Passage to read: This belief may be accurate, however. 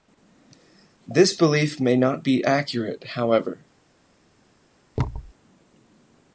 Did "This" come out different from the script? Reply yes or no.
no